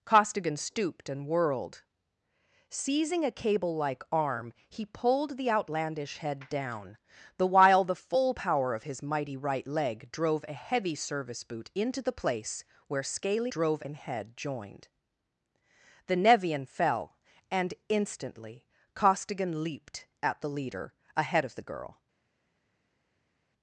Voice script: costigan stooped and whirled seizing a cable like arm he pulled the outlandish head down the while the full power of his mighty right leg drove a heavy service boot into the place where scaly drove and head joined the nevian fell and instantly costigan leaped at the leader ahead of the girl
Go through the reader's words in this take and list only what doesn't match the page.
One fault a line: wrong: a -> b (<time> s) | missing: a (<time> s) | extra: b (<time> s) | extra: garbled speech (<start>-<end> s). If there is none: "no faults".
no faults